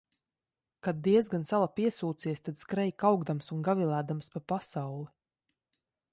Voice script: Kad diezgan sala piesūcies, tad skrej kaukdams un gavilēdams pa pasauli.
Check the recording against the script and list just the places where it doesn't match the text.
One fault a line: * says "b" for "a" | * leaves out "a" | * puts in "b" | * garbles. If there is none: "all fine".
all fine